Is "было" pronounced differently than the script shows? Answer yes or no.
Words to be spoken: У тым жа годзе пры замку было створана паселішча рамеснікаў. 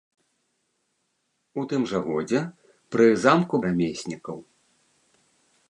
yes